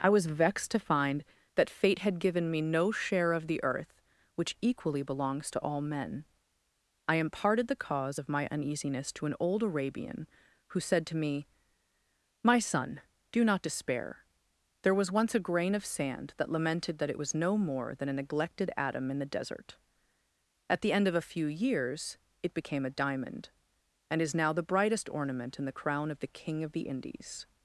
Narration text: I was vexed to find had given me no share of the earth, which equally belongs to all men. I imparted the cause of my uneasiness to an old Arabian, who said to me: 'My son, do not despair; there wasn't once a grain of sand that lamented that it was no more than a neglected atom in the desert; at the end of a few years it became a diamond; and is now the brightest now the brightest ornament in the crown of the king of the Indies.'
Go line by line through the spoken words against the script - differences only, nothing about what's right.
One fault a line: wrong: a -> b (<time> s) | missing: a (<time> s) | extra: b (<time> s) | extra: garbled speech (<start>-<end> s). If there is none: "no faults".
extra: that fate (1.5 s)
wrong: wasn't -> was (14.9 s)
missing: now the brightest (25.1 s)